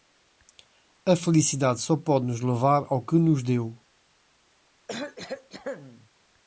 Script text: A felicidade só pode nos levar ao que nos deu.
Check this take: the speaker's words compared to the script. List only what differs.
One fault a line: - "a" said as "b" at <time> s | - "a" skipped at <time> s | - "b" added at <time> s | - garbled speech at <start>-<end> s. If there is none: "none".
none